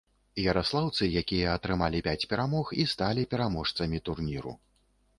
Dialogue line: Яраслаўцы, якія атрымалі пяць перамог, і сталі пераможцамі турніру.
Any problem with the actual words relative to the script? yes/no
no